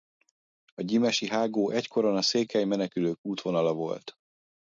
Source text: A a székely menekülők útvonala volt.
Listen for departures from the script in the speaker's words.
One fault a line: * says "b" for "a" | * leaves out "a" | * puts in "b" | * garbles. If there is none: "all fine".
* puts in "gyimesi hágó egykoron"